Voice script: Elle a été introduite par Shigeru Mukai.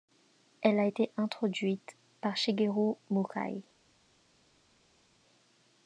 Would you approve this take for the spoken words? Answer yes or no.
yes